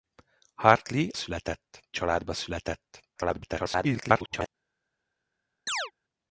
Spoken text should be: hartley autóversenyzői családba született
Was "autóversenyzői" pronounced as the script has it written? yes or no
no